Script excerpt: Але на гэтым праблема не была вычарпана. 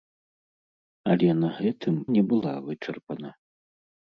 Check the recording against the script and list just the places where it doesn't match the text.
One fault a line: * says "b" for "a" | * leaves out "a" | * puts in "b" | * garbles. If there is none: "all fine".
* leaves out "праблема"